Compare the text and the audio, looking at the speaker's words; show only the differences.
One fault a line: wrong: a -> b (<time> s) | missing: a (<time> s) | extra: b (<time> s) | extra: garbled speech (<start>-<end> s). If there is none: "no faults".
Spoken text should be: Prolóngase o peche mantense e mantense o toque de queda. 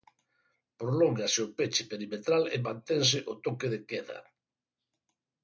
wrong: mantense -> perimetral (1.9 s)